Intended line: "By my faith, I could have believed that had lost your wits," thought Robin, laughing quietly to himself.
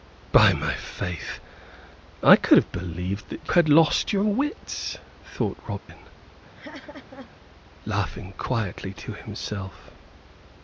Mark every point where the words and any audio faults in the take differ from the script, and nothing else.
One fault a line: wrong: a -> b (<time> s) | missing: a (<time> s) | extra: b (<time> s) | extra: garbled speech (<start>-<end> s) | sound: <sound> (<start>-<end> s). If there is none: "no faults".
sound: dropout (5.8-5.9 s)
sound: laugh (6.5-7.3 s)